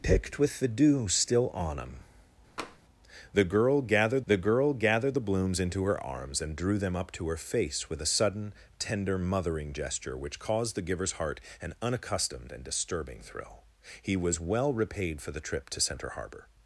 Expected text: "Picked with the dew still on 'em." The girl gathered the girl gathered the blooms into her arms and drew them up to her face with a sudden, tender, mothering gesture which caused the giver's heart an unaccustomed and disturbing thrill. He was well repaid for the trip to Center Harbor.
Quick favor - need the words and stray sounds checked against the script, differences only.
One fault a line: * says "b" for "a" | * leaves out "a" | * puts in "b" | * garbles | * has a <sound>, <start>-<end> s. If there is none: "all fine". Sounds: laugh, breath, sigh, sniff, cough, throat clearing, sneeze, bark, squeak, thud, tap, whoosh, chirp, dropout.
* has a tap, 2.6-2.8 s